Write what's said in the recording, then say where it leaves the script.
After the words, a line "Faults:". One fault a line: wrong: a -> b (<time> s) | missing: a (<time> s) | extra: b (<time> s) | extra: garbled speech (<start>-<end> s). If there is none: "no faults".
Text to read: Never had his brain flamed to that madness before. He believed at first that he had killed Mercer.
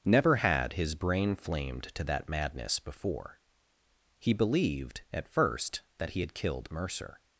Never had his brain flamed to that madness before. He believed at first that he had killed Mercer.
Faults:
no faults